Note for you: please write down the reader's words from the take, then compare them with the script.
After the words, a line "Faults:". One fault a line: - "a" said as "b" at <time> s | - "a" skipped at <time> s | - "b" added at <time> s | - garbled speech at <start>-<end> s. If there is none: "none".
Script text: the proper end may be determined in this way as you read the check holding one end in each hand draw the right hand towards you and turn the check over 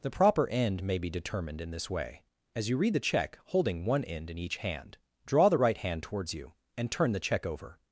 the proper end may be determined in this way as you read the check holding one end in each hand draw the right hand towards you and turn the check over
Faults:
none